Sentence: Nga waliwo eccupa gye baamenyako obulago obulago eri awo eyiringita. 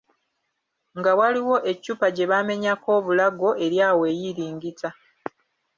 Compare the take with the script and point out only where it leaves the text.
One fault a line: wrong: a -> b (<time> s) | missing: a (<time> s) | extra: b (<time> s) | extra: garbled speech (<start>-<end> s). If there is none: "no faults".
missing: obulago (3.5 s)